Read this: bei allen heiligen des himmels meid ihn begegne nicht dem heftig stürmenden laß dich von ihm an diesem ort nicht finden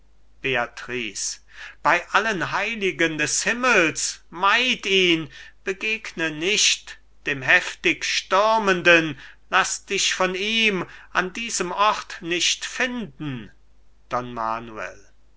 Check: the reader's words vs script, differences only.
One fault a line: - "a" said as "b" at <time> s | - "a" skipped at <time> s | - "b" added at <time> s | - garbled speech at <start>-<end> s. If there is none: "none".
none